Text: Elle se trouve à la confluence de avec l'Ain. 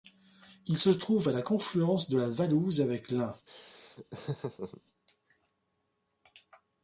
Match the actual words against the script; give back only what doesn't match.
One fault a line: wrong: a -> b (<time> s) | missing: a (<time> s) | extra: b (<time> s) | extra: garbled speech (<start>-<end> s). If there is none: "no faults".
wrong: Elle -> Il (0.7 s)
extra: la Valouse (2.2 s)